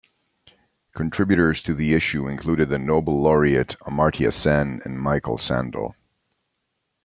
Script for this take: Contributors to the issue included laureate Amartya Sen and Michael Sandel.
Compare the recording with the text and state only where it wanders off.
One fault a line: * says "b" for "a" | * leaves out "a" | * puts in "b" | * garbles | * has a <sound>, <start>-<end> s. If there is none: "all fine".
* puts in "the Nobel"